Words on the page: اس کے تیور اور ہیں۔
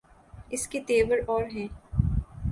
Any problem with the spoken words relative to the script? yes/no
no